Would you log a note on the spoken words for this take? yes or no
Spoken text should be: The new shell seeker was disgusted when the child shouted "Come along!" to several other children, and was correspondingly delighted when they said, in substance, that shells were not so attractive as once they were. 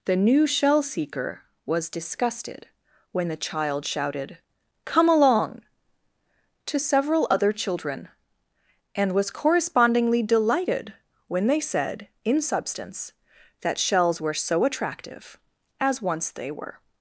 yes